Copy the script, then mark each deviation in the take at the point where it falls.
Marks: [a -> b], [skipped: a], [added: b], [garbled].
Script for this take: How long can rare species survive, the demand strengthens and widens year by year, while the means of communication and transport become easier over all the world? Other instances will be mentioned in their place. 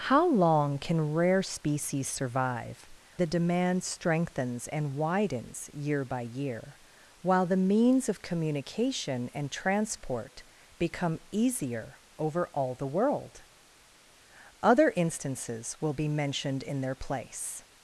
How long can rare species survive, the demand strengthens and widens year by year, while the means of communication and transport become easier over all the world? Other instances will be mentioned in their place.